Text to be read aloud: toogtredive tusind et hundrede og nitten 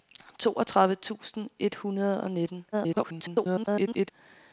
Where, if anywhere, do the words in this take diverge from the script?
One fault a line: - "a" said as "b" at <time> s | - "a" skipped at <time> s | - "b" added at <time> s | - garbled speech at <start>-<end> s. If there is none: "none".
- garbled speech at 2.7-4.1 s